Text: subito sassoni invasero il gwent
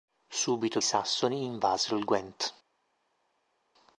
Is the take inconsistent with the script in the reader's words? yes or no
no